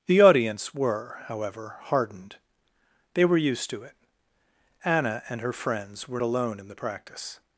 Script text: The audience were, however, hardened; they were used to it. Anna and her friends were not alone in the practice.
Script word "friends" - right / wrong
right